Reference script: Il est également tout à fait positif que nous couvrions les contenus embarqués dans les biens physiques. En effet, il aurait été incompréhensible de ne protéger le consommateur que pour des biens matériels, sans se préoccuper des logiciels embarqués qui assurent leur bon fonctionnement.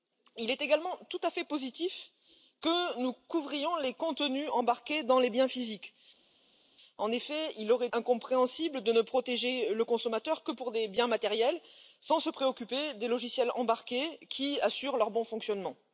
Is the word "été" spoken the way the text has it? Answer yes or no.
no